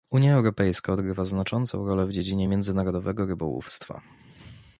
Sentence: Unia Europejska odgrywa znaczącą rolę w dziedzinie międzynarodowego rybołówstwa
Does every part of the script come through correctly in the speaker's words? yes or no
yes